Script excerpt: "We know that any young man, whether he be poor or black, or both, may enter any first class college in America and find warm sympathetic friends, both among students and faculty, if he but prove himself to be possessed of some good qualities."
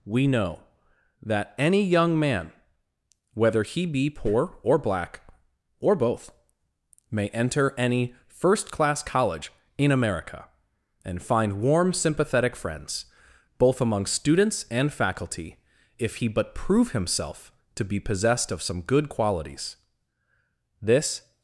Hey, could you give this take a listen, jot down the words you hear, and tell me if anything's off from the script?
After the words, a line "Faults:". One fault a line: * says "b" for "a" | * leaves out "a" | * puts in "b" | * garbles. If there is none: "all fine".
"We know that any young man, whether he be poor or black, or both, may enter any first class college in America and find warm sympathetic friends, both among students and faculty, if he but prove himself to be possessed of some good qualities." This
Faults:
* puts in "This"